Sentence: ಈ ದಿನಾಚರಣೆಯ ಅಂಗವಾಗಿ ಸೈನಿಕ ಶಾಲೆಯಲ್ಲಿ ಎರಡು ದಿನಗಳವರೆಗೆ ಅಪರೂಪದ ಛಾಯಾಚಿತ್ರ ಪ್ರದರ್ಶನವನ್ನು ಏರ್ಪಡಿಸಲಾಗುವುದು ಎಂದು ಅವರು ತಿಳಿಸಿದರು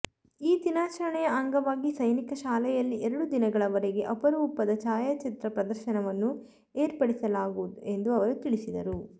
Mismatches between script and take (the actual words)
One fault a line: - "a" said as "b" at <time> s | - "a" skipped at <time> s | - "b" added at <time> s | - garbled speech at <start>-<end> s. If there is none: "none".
none